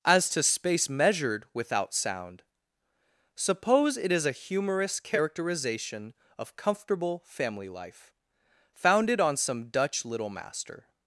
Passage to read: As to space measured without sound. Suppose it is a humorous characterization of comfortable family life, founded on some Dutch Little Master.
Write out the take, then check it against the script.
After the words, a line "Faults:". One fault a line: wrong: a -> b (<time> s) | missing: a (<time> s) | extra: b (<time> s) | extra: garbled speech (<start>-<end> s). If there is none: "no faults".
As to space measured without sound. Suppose it is a humorous characterization of comfortable family life, founded on some Dutch Little Master.
Faults:
no faults